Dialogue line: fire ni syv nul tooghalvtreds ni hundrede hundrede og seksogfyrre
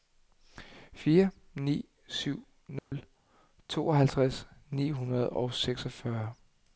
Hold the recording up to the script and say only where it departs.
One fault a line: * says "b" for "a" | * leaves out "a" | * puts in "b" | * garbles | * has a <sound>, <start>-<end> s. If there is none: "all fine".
* has a dropout, 2.8-2.9 s
* leaves out "hundrede"